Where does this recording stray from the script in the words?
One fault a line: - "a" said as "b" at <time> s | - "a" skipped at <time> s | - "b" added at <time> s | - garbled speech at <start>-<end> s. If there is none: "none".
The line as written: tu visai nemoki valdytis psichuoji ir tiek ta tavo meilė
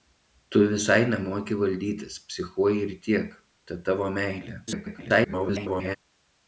- garbled speech at 4.7-6.0 s